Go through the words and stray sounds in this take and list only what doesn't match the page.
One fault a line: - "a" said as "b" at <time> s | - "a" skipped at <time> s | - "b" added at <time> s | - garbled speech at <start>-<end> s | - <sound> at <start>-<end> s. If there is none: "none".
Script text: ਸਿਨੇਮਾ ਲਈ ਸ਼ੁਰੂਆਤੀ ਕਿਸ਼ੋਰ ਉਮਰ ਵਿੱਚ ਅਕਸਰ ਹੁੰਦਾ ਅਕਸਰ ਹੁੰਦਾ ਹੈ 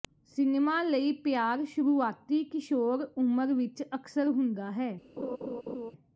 - "ਪਿਆਰ" added at 1.2 s
- "ਅਕਸਰ ਹੁੰਦਾ" skipped at 4.7 s
- laugh at 5.2-5.9 s